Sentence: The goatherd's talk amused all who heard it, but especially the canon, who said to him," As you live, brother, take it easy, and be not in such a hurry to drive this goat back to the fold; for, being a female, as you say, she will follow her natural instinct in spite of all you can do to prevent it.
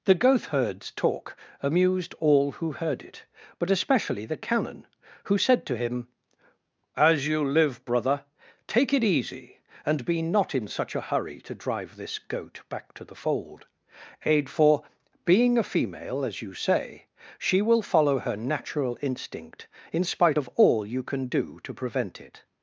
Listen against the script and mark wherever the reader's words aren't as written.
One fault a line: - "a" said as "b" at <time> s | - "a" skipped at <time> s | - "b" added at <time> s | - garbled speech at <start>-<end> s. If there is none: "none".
- "aid" added at 14.2 s